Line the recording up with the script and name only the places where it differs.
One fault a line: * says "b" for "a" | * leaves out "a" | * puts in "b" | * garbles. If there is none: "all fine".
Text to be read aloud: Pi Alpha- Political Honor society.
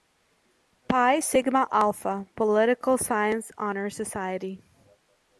* puts in "Sigma"
* puts in "Science"